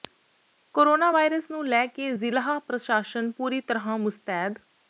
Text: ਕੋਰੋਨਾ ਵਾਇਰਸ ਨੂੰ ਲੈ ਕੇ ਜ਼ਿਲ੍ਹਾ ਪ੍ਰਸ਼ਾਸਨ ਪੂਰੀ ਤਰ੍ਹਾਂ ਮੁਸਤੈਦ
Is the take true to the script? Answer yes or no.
yes